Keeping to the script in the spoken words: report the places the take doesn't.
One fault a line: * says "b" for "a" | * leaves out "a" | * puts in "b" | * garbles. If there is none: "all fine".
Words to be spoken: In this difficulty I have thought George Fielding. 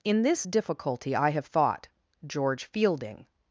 all fine